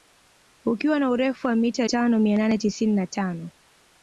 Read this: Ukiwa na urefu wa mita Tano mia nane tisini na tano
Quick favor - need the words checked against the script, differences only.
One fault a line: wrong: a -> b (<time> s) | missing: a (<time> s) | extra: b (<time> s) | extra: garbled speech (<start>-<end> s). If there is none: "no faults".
no faults